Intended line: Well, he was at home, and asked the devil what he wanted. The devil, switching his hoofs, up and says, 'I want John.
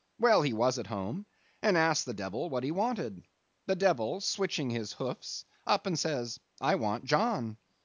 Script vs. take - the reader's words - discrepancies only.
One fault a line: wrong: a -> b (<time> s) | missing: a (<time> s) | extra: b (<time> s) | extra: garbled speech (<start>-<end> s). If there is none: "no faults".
no faults